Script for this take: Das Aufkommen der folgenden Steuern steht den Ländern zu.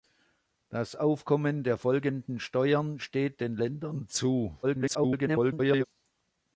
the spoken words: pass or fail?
fail